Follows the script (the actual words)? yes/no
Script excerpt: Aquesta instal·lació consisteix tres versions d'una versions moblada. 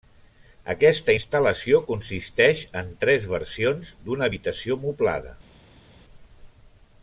no